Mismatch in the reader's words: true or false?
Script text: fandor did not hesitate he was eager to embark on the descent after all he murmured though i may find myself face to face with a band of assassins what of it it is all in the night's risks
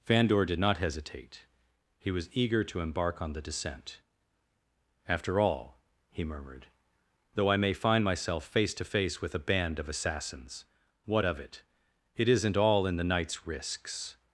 true